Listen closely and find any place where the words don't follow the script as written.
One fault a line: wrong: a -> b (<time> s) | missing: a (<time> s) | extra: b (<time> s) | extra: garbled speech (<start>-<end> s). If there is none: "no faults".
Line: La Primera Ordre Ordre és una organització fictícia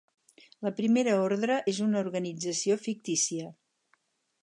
missing: Ordre (1.6 s)